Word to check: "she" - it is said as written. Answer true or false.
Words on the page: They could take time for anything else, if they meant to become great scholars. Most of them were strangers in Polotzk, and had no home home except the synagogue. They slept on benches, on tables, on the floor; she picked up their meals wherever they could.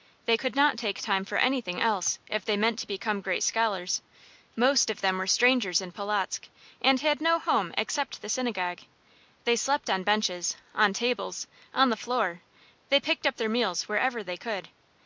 false